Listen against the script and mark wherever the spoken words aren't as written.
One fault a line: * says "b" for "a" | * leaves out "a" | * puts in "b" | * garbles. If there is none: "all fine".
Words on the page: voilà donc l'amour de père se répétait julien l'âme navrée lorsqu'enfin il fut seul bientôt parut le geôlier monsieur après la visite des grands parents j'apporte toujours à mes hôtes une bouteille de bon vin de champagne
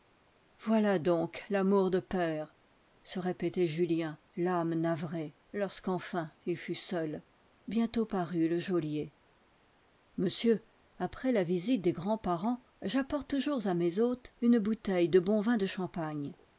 all fine